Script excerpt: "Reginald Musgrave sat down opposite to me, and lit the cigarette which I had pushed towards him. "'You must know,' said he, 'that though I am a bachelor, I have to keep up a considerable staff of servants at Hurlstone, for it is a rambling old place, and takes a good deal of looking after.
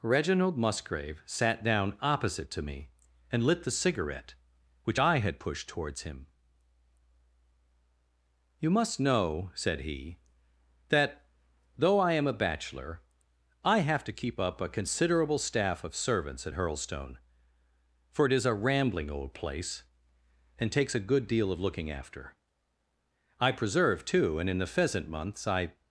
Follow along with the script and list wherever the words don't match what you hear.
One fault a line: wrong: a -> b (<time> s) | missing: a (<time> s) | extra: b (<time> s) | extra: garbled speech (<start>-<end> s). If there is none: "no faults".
extra: I preserve too and in the pheasant months I (23.4 s)